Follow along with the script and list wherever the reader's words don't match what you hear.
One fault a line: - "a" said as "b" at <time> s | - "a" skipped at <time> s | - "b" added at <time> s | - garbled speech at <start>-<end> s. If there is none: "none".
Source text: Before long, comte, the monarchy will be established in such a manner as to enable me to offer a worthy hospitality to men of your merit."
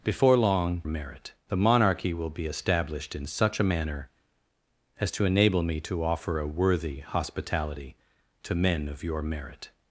- "comte" said as "merit" at 0.8 s